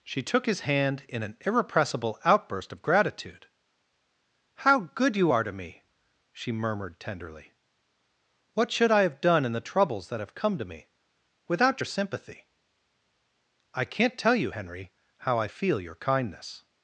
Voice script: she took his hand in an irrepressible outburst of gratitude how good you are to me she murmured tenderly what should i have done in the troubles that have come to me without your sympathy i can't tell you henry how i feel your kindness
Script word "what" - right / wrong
right